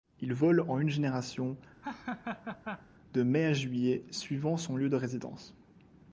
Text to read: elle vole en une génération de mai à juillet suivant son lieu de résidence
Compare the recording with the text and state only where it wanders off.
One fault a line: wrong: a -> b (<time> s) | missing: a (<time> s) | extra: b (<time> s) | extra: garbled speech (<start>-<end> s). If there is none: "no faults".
wrong: elle -> il (0.2 s)